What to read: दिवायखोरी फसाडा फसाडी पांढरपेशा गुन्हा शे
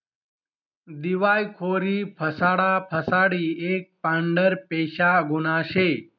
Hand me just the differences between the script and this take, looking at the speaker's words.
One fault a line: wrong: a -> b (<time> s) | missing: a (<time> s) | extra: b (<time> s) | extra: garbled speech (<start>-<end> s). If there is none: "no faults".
extra: एक (3.7 s)